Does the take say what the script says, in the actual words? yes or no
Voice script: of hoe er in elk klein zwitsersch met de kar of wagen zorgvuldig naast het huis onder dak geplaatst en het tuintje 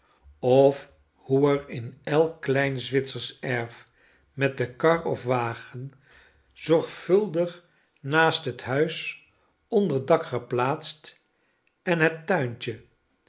no